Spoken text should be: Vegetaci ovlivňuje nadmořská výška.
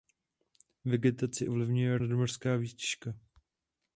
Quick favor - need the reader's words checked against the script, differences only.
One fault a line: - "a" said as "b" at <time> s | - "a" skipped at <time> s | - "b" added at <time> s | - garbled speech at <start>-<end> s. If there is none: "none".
none